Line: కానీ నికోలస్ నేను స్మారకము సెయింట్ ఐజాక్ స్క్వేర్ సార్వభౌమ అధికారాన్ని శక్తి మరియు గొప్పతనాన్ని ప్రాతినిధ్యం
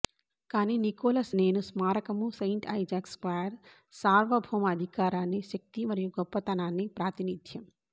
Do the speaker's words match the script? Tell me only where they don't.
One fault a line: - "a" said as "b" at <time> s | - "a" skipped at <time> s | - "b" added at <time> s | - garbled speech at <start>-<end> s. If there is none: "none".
none